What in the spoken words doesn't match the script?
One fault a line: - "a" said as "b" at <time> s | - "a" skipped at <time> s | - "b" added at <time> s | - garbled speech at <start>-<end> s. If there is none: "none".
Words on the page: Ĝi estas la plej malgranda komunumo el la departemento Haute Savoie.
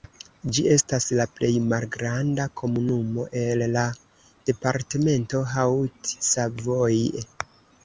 none